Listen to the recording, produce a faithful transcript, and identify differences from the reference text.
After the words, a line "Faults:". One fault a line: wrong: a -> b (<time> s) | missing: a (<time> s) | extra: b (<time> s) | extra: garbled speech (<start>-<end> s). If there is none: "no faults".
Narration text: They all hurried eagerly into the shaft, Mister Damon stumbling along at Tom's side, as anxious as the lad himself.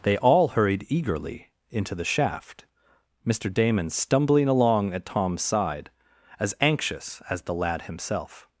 They all hurried eagerly into the shaft, Mister Damon stumbling along at Tom's side, as anxious as the lad himself.
Faults:
no faults